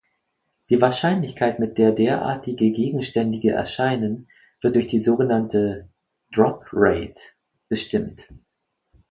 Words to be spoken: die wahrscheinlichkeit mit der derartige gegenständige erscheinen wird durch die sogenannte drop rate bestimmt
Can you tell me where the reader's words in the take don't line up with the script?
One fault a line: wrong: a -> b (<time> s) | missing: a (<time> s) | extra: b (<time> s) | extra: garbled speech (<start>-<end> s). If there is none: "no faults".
no faults